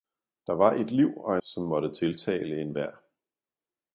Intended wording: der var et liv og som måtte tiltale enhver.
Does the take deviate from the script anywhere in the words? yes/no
no